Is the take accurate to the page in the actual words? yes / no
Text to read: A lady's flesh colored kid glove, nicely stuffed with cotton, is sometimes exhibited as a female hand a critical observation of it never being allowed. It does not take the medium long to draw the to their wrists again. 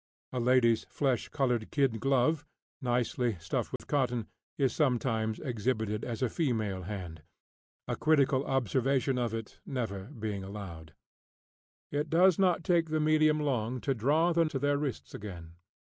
yes